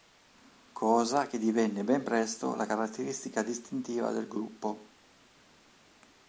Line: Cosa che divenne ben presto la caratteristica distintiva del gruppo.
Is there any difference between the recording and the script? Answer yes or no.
no